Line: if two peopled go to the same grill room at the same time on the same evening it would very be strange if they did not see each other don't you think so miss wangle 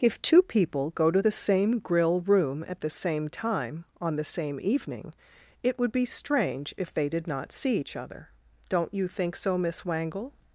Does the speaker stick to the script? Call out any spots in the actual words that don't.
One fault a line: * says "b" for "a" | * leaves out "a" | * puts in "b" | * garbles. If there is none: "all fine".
* says "people" for "peopled"
* leaves out "very"